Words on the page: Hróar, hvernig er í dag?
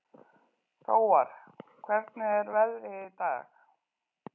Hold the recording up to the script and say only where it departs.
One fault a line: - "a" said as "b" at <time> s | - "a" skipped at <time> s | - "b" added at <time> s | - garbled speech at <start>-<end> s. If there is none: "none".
- "veðrið" added at 2.6 s